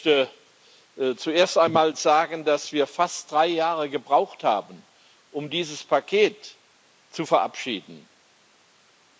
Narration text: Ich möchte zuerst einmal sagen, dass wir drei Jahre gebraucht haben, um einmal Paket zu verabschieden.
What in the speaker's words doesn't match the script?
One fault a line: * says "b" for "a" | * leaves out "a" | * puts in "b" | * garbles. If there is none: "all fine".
* puts in "fast"
* says "dieses" for "einmal"